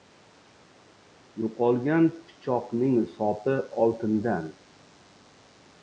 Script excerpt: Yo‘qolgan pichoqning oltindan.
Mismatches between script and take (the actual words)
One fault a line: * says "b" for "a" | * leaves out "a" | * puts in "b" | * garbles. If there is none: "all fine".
* puts in "sopi"